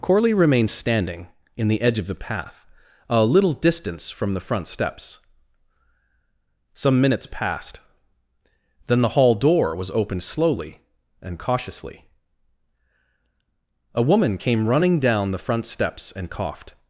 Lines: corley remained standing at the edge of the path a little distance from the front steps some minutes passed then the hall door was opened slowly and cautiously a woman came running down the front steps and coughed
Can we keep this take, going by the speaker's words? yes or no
no